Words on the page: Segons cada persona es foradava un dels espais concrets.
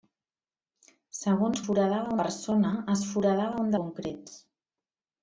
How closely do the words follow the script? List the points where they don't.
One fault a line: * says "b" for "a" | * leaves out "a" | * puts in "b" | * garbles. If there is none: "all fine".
* says "foradava" for "cada"
* leaves out "dels espais"